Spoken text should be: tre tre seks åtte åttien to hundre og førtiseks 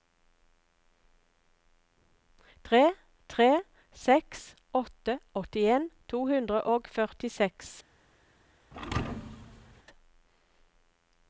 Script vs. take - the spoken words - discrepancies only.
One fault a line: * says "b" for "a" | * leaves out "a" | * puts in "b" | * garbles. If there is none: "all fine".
all fine